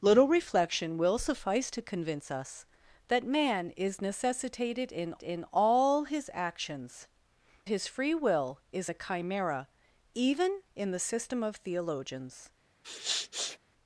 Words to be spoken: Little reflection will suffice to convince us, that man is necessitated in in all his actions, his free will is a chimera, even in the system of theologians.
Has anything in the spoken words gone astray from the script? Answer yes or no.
no